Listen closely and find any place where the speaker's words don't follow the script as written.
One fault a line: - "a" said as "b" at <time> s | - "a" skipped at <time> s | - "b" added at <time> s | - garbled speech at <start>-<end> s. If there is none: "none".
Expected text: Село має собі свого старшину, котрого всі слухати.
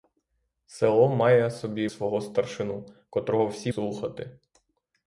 none